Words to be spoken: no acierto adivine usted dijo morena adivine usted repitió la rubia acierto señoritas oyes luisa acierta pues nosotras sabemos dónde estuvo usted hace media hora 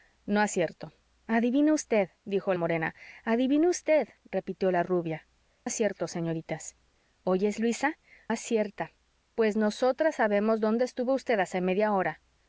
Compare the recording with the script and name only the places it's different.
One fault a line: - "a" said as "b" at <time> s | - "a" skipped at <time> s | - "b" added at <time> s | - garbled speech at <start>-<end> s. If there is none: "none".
none